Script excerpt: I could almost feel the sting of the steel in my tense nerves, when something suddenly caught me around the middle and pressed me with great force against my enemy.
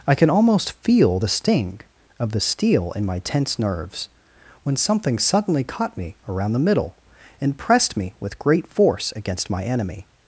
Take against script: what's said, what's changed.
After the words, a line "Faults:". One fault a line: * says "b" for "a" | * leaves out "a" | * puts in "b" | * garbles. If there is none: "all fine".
I can almost feel the sting of the steel in my tense nerves, when something suddenly caught me around the middle and pressed me with great force against my enemy.
Faults:
* says "can" for "could"